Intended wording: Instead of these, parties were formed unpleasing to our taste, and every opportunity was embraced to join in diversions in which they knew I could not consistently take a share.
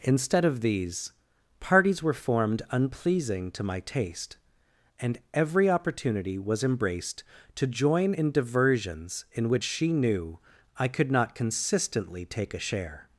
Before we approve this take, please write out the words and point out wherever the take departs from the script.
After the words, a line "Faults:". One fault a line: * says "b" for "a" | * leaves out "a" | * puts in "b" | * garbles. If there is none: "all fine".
Instead of these, parties were formed unpleasing to my taste, and every opportunity was embraced to join in diversions in which she knew I could not consistently take a share.
Faults:
* says "my" for "our"
* says "she" for "they"